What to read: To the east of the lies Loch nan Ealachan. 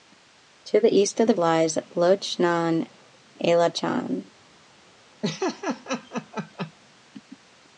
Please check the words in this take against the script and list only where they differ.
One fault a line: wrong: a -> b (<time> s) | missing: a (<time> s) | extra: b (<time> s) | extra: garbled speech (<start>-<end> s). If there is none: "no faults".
no faults